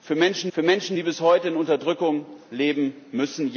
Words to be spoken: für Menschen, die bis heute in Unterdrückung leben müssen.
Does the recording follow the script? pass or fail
fail